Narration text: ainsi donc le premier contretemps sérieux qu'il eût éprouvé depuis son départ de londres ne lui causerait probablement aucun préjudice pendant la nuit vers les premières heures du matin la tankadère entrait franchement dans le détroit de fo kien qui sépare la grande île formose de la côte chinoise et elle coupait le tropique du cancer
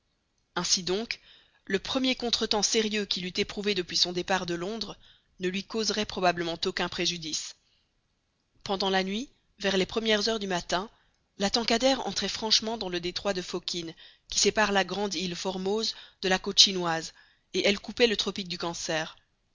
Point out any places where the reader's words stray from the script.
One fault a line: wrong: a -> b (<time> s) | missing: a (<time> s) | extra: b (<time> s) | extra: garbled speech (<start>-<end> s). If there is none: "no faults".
no faults